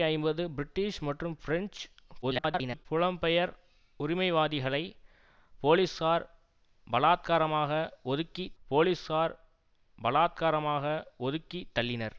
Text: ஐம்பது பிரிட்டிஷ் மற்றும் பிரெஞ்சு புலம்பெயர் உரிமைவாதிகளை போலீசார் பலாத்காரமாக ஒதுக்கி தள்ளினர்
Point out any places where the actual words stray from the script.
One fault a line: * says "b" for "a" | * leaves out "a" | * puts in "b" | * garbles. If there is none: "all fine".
* garbles
* puts in "போலீசார் பலாத்காரமாக ஒதுக்கி"